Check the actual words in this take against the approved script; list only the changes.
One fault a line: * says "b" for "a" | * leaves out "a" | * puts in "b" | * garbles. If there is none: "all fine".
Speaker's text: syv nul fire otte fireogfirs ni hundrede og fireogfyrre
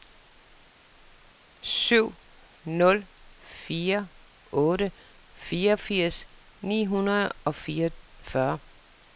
all fine